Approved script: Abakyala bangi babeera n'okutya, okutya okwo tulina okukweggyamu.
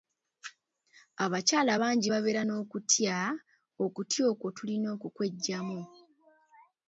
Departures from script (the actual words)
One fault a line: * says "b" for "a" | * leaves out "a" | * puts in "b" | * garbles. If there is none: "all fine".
all fine